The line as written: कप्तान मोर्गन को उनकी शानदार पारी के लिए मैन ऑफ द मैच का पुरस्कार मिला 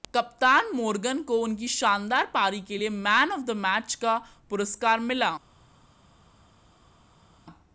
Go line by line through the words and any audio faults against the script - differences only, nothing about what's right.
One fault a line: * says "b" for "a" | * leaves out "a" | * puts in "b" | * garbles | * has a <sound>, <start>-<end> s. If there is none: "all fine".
all fine